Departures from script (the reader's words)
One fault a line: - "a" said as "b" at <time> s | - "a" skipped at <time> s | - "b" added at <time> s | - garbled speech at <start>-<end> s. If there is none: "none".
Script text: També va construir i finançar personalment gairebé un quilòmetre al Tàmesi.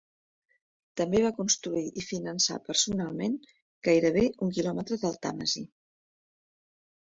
- "al" said as "del" at 5.1 s